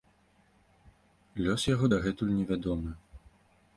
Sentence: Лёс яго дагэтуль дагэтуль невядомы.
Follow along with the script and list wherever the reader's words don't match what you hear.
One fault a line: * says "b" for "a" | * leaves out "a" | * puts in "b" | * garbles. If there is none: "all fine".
* leaves out "дагэтуль"